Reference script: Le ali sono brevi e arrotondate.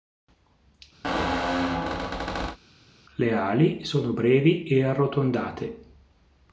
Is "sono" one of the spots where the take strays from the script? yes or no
no